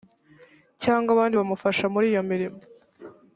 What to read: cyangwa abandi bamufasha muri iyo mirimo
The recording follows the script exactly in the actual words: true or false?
true